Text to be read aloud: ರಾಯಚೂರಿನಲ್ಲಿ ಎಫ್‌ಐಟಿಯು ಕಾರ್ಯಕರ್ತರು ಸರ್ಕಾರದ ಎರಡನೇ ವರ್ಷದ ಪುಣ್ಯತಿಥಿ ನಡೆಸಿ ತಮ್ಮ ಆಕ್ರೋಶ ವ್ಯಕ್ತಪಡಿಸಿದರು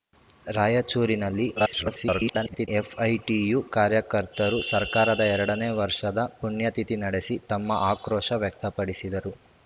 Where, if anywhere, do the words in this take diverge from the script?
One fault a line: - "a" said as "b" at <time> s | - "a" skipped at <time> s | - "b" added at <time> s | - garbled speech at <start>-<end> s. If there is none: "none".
- garbled speech at 1.6-2.7 s